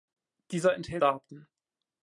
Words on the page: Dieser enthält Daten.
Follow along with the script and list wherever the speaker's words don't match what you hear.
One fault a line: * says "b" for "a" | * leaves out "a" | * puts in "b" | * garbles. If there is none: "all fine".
all fine